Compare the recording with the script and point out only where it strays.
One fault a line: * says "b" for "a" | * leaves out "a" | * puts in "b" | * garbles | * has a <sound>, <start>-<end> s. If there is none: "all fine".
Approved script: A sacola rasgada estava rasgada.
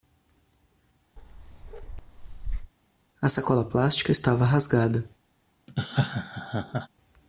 * has a bark, 1.2-2.7 s
* says "plástica" for "rasgada"
* has a laugh, 5.7-6.9 s